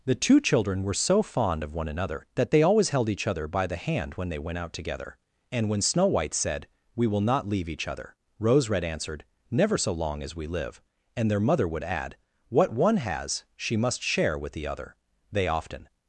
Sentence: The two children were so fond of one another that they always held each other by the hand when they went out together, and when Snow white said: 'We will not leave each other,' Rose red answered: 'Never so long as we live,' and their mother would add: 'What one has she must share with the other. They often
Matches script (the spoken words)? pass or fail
pass